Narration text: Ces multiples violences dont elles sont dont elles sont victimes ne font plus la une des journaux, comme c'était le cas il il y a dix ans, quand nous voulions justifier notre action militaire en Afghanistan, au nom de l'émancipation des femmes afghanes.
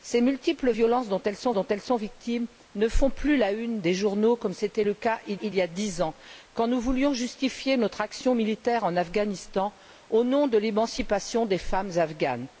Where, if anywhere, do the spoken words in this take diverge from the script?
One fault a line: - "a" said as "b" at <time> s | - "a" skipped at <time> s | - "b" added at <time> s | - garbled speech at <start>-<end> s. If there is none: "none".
none